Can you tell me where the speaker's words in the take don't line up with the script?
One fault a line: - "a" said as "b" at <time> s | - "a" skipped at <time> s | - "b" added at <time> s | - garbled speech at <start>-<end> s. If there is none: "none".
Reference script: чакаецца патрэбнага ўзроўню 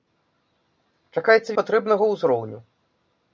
none